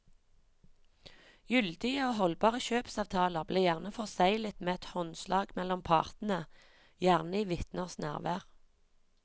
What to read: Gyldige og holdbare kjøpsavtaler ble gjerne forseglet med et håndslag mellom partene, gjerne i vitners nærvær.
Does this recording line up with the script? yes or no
yes